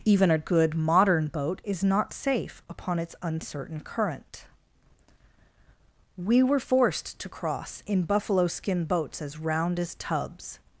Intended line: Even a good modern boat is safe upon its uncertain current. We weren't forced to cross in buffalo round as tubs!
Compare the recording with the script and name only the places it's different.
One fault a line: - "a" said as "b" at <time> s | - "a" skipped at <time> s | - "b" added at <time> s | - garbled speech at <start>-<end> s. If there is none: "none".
- "not" added at 1.8 s
- "weren't" said as "were" at 6.4 s
- "skin boats as" added at 8.5 s